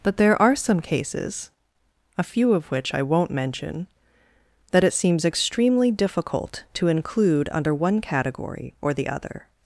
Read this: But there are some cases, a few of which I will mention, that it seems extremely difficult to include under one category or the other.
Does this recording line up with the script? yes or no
no